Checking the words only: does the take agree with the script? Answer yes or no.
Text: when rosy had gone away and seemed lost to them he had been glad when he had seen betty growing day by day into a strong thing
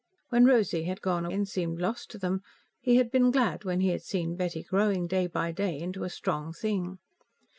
no